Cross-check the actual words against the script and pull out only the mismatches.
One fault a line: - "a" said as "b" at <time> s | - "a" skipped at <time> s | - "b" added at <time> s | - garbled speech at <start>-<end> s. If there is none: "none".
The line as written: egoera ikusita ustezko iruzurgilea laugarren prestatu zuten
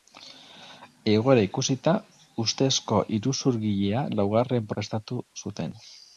none